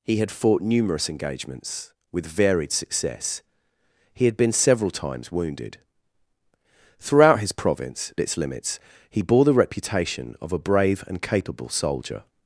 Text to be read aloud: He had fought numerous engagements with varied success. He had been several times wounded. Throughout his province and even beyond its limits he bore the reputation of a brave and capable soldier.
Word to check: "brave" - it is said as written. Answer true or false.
true